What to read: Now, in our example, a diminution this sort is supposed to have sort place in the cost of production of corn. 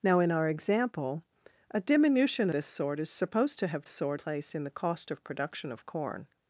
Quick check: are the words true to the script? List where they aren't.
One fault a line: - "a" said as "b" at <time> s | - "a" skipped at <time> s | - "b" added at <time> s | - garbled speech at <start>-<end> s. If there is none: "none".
none